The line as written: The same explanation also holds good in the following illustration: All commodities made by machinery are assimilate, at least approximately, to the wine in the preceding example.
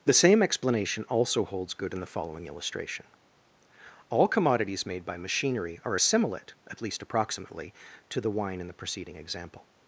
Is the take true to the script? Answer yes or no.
yes